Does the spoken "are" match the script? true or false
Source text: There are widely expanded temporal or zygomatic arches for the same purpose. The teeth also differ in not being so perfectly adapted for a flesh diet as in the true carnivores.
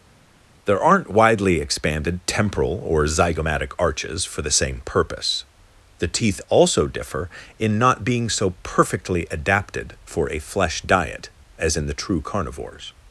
false